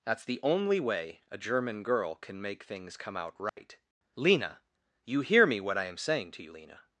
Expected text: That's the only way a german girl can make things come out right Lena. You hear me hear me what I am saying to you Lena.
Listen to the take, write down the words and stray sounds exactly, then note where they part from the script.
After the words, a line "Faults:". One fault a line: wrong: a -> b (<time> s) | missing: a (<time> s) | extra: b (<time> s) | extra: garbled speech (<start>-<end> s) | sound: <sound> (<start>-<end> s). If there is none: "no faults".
That's the only way a german girl can make things come out right Lena. You hear me what I am saying to you Lena.
Faults:
sound: dropout (3.5-3.6 s)
missing: hear me (5.6 s)